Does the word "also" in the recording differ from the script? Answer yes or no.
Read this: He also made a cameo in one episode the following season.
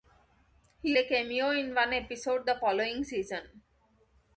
yes